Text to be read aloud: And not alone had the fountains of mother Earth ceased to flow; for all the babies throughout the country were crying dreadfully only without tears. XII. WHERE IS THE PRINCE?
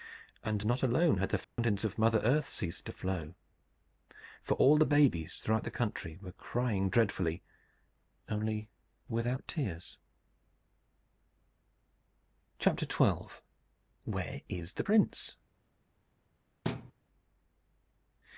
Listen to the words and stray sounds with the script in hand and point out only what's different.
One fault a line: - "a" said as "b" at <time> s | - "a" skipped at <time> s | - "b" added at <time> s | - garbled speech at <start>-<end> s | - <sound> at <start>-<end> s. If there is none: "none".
- dropout at 1.4-1.6 s
- thud at 16.6-16.9 s